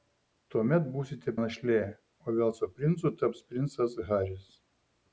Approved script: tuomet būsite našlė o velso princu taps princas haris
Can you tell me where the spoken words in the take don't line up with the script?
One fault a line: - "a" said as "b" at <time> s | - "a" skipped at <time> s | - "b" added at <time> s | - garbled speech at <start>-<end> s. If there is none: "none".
none